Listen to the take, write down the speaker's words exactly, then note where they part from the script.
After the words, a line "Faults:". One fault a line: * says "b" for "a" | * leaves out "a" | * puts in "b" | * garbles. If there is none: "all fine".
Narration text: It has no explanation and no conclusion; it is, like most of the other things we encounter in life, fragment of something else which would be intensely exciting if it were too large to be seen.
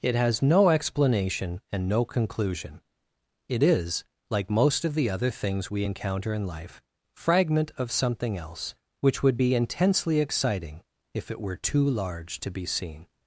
It has no explanation and no conclusion; it is, like most of the other things we encounter in life, fragment of something else which would be intensely exciting if it were too large to be seen.
Faults:
all fine